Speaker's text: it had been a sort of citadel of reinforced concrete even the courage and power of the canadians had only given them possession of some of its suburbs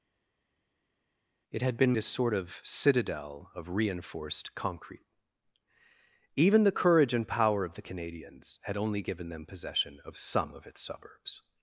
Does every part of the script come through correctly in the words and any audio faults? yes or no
yes